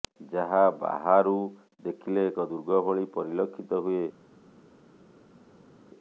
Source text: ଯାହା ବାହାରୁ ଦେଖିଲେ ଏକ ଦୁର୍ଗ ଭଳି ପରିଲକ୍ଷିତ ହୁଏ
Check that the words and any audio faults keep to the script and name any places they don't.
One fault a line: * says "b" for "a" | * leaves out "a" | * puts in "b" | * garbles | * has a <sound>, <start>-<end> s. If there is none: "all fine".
all fine